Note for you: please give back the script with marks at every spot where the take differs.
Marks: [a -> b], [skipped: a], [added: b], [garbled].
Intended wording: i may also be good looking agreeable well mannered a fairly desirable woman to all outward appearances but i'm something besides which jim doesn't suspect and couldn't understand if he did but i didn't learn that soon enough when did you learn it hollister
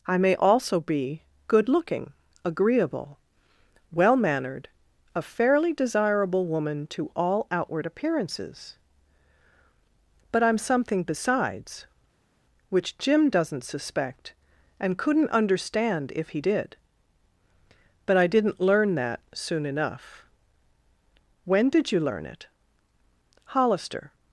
i may also be good looking agreeable well mannered a fairly desirable woman to all outward appearances but i'm something besides which jim doesn't suspect and couldn't understand if he did but i didn't learn that soon enough when did you learn it hollister